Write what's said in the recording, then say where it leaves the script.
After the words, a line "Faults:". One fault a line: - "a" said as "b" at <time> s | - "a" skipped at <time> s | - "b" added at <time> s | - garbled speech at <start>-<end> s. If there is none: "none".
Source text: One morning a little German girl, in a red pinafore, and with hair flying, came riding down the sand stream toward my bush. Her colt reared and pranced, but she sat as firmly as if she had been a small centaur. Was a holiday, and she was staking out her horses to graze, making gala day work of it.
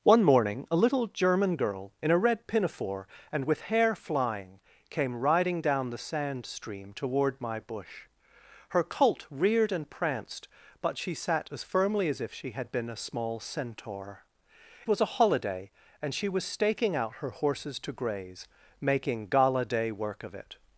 One morning a little German girl, in a red pinafore, and with hair flying, came riding down the sand stream toward my bush. Her colt reared and pranced, but she sat as firmly as if she had been a small centaur. Was a holiday, and she was staking out her horses to graze, making gala day work of it.
Faults:
none